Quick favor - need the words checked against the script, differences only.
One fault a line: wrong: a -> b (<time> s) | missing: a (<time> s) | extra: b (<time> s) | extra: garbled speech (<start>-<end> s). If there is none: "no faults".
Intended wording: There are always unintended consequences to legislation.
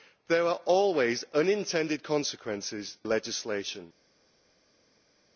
missing: to (3.0 s)